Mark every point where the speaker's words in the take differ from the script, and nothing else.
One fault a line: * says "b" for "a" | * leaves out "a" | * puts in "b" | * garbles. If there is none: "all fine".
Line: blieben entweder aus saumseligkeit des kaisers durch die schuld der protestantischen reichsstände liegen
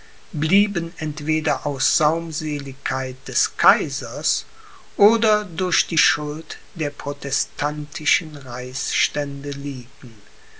* puts in "oder"